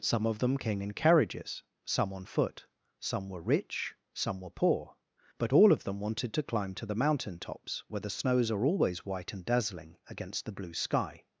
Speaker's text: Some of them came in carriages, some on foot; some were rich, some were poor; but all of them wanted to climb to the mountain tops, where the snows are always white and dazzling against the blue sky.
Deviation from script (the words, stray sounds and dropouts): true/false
false